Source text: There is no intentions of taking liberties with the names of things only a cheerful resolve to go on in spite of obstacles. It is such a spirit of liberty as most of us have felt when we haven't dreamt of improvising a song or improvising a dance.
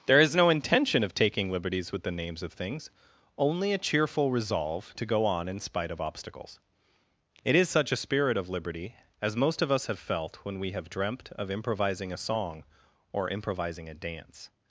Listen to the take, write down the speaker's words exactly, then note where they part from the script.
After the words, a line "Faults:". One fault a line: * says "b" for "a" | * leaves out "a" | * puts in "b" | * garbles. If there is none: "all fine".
There is no intention of taking liberties with the names of things only a cheerful resolve to go on in spite of obstacles. It is such a spirit of liberty as most of us have felt when we have dreamt of improvising a song or improvising a dance.
Faults:
* says "intention" for "intentions"
* says "have" for "haven't"